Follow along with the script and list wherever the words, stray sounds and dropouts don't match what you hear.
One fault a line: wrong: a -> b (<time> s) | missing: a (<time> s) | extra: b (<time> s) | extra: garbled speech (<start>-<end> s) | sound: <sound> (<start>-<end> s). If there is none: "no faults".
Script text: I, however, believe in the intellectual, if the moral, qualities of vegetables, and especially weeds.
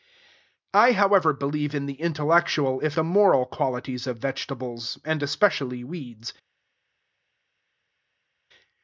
no faults